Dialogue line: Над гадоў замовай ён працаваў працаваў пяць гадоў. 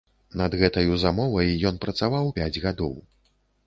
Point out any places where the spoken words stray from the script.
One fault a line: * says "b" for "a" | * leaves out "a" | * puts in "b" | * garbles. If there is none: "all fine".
* says "гэтаю" for "гадоў"
* leaves out "працаваў"